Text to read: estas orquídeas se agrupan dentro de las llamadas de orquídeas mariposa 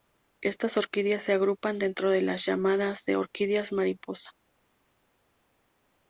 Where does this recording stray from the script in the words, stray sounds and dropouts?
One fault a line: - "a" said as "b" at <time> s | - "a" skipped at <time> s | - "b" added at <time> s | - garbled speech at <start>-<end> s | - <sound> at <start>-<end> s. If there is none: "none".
none